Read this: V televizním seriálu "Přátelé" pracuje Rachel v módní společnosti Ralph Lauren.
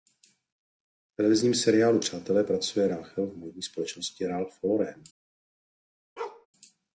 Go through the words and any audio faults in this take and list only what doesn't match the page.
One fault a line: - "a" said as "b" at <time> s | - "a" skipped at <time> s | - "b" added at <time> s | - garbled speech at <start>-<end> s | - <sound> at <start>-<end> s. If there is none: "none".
- bark at 6.2-6.5 s